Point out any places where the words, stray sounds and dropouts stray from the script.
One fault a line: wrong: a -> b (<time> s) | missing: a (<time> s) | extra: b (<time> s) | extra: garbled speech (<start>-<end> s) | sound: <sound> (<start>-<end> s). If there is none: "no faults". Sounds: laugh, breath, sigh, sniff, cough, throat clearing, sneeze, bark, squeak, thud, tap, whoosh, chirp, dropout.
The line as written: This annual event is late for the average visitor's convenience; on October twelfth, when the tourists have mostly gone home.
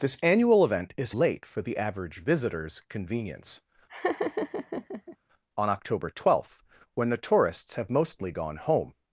sound: laugh (3.9-5.2 s)